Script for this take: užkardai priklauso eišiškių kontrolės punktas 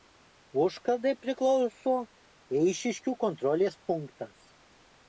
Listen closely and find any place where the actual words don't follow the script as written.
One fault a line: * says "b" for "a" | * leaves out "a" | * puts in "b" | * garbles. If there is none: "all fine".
all fine